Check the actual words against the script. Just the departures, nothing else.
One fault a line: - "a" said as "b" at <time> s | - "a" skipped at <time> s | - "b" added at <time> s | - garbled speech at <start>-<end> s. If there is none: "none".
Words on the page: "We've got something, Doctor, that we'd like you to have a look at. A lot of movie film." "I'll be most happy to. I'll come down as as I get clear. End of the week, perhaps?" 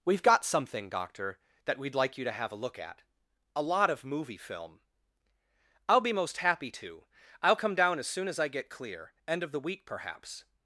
- "soon" added at 8.1 s